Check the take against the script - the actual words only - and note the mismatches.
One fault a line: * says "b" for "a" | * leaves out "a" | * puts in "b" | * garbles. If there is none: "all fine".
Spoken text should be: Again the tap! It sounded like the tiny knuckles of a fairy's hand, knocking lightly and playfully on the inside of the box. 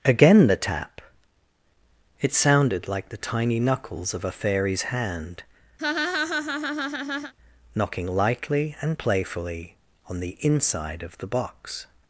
all fine